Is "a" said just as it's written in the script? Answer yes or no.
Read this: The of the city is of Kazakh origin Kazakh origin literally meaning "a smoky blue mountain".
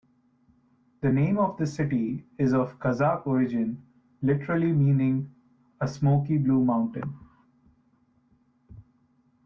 yes